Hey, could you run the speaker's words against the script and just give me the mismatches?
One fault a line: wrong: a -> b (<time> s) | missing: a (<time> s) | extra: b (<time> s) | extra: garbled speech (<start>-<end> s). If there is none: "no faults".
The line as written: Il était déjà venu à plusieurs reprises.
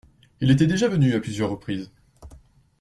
no faults